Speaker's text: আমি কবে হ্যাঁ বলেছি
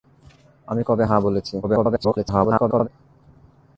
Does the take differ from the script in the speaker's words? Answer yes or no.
yes